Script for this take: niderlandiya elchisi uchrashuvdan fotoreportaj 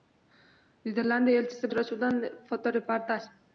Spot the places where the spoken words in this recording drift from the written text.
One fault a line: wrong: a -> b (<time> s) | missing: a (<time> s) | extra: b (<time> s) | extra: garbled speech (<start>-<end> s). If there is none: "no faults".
no faults